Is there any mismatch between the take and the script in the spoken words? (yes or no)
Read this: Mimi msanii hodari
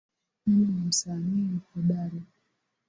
yes